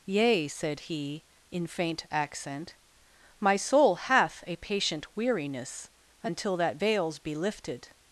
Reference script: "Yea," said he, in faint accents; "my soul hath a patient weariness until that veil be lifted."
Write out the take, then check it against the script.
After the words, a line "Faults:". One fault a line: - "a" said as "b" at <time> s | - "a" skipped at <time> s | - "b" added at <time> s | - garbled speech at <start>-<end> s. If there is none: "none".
"Yea," said he, in faint accent; "my soul hath a patient weariness until that veils be lifted."
Faults:
- "accents" said as "accent" at 2.1 s
- "veil" said as "veils" at 6.8 s